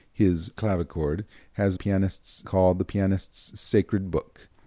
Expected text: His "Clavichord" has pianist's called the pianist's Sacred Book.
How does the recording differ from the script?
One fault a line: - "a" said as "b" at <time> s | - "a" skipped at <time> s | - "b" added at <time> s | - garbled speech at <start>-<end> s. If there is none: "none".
none